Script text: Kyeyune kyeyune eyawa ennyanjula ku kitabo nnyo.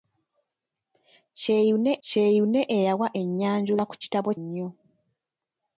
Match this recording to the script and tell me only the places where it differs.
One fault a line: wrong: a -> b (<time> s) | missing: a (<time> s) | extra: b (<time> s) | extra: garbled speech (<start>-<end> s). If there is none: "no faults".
no faults